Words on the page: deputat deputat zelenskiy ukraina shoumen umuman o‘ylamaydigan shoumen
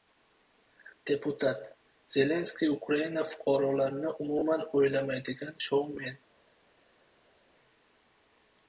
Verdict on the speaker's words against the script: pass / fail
fail